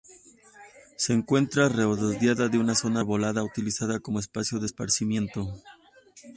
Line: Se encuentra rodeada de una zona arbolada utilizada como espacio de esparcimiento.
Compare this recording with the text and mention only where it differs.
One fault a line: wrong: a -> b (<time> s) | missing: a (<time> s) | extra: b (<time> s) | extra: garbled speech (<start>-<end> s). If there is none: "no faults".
no faults